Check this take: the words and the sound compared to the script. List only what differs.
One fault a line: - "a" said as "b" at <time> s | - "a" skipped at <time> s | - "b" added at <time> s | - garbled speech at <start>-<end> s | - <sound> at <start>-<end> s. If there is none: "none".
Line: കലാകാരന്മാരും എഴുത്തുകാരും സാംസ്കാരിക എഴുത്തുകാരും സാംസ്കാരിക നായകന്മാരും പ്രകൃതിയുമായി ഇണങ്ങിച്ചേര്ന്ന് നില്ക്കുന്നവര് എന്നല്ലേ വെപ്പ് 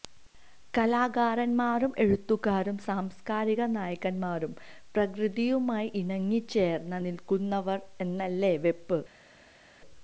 - "എഴുത്തുകാരും സാംസ്കാരിക" skipped at 3.6 s